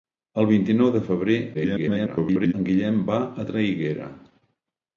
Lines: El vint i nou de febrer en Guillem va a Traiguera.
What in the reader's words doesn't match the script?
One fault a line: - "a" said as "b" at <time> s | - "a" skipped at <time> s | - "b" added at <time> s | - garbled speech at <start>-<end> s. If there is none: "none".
- garbled speech at 1.5-2.5 s